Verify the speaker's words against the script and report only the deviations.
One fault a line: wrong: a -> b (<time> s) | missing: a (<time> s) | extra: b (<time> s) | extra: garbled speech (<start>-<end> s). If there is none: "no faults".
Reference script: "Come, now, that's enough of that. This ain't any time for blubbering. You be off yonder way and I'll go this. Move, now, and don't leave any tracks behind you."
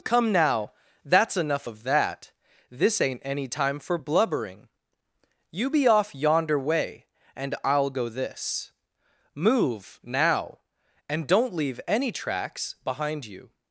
no faults